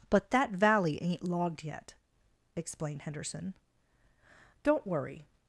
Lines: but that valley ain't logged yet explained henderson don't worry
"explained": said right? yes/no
yes